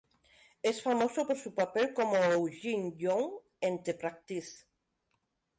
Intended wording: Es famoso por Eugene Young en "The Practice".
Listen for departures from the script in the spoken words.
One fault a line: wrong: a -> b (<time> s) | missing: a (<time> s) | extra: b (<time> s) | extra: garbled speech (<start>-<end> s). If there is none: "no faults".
extra: su papel como (1.4 s)